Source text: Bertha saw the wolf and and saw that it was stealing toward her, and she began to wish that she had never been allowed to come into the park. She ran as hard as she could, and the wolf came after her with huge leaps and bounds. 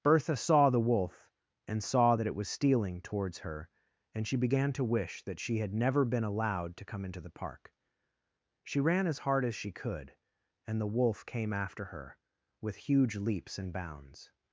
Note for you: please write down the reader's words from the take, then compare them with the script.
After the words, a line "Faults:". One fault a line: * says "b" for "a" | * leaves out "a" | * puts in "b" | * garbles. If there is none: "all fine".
Bertha saw the wolf and saw that it was stealing towards her, and she began to wish that she had never been allowed to come into the park. She ran as hard as she could, and the wolf came after her with huge leaps and bounds.
Faults:
* leaves out "and"
* says "towards" for "toward"